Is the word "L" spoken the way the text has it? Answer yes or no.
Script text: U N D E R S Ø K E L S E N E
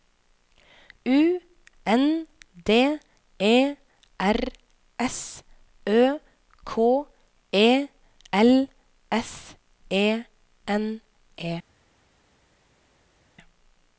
yes